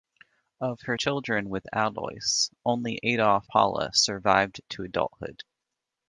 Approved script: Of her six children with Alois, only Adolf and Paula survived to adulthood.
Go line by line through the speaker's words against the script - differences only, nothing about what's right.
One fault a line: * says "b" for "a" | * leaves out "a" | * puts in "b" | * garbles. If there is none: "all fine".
* leaves out "six"
* leaves out "and"